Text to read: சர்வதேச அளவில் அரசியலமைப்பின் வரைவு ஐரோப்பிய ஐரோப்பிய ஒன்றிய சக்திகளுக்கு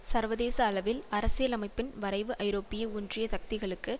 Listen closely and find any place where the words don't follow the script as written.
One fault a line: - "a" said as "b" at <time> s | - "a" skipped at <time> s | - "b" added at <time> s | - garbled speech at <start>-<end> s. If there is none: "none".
- "ஐரோப்பிய" skipped at 2.8 s